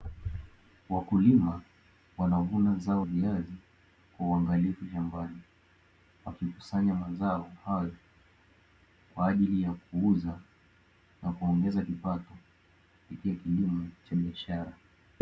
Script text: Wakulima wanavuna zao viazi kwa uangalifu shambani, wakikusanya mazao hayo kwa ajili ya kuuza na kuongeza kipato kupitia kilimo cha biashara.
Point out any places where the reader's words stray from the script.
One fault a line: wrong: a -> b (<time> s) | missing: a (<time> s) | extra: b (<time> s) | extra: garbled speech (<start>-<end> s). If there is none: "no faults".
no faults